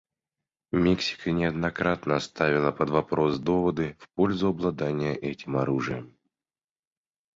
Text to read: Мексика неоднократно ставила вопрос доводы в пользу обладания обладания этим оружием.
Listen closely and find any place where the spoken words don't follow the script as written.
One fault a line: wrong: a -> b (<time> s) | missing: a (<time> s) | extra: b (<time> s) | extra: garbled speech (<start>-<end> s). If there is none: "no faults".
extra: под (2.7 s)
missing: обладания (5.1 s)